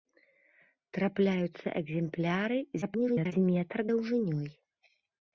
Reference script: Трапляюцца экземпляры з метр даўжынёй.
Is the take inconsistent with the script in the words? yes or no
yes